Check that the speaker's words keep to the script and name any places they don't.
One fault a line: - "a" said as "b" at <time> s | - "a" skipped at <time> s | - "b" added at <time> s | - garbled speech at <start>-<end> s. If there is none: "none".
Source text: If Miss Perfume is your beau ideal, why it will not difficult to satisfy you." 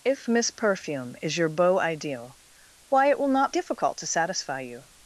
none